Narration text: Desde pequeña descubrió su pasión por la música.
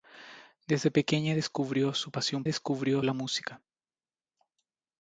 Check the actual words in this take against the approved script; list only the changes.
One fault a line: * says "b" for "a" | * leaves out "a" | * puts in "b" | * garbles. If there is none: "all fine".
* says "descubrió" for "por"